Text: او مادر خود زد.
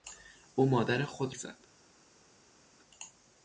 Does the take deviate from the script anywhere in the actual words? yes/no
no